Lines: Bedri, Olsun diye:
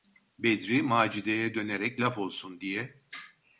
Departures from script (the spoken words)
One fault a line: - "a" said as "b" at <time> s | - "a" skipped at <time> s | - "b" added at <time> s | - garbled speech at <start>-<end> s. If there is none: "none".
- "Macide'ye dönerek laf" added at 0.8 s